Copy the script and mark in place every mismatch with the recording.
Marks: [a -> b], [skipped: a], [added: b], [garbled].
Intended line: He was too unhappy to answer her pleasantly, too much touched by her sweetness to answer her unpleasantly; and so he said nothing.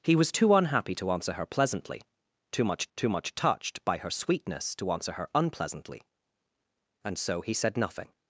He was too unhappy to answer her pleasantly, too much [added: too much] touched by her sweetness to answer her unpleasantly; and so he said nothing.